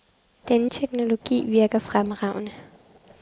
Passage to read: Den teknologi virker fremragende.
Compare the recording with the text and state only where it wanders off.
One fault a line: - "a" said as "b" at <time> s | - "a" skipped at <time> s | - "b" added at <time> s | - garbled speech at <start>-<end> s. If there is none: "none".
none